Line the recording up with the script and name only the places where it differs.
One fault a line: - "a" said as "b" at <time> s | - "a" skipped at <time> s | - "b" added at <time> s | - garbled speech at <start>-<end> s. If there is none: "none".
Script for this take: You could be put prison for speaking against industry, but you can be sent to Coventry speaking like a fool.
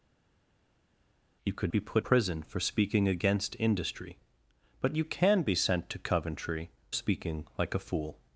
none